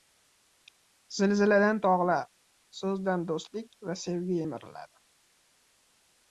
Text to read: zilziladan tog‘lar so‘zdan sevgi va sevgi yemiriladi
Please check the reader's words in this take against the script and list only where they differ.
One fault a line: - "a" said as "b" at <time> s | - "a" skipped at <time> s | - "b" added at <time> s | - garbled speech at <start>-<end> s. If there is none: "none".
- "sevgi" said as "do‘stlik" at 3.4 s